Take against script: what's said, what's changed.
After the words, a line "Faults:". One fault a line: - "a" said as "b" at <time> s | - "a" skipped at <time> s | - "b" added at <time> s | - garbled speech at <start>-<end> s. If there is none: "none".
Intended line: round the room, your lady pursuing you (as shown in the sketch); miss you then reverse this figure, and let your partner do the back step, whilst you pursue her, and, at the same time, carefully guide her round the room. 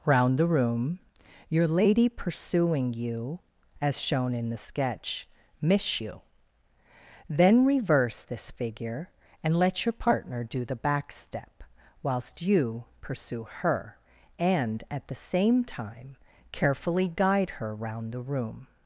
round the room, your lady pursuing you (as shown in the sketch); miss you then reverse this figure, and let your partner do the back step, whilst you pursue her, and, at the same time, carefully guide her round the room.
Faults:
none